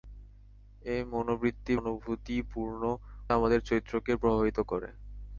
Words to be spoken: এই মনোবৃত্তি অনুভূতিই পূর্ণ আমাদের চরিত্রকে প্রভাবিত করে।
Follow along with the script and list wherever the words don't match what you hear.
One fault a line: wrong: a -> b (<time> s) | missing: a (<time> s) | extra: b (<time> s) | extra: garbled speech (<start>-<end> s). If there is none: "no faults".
no faults